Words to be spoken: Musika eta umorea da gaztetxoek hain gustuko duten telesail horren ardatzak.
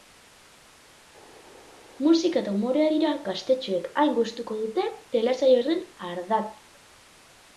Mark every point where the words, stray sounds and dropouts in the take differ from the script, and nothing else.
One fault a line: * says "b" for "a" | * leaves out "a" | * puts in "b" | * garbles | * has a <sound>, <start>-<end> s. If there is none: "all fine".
* says "dira" for "da"